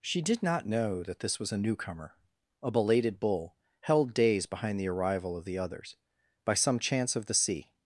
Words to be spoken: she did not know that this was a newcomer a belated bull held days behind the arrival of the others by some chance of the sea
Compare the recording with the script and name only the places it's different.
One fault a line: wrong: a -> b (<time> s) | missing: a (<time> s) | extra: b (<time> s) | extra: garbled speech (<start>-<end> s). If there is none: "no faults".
no faults